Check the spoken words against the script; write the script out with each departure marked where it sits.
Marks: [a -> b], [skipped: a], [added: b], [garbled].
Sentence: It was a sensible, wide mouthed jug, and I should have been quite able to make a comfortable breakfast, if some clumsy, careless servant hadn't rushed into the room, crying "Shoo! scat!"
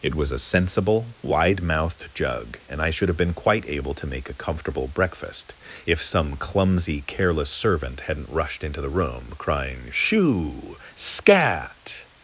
It was a sensible, wide mouthed jug, and I should have been quite able to make a comfortable breakfast, if some clumsy, careless servant hadn't rushed into the room, crying "Shoo! scat!"